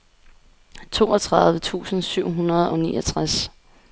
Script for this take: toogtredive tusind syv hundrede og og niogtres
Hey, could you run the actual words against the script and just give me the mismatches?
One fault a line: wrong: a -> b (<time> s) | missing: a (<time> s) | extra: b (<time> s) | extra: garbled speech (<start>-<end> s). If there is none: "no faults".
missing: og (2.8 s)